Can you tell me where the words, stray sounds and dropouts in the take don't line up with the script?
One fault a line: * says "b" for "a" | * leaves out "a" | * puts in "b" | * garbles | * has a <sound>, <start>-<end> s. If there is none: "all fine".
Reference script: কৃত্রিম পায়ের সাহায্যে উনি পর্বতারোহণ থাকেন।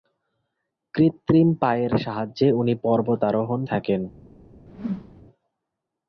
* has a whoosh, 4.7-5.2 s